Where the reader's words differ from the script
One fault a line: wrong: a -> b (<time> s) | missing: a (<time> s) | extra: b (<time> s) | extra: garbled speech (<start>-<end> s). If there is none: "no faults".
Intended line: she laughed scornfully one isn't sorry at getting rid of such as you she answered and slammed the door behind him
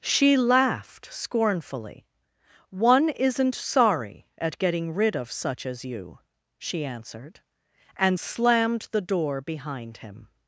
no faults